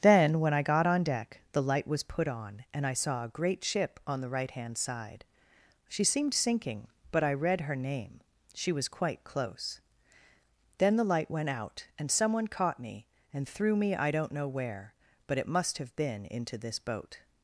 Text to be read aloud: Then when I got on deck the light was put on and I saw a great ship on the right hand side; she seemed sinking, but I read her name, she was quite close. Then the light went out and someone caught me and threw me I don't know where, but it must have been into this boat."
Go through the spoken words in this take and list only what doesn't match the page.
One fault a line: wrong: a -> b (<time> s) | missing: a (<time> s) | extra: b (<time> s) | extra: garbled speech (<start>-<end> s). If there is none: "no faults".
no faults